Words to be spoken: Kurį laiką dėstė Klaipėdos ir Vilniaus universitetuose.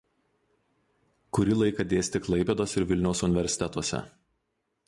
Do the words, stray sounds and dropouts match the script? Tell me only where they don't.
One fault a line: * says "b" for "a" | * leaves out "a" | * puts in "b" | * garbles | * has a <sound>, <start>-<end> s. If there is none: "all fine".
all fine